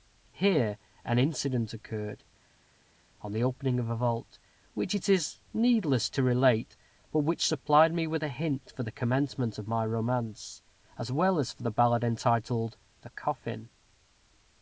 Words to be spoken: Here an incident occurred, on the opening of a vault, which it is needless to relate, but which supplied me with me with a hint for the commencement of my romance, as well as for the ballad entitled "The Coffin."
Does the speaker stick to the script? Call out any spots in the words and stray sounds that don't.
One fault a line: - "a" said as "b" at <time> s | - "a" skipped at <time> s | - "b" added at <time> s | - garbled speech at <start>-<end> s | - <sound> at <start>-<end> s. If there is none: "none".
- "me with" skipped at 8.2 s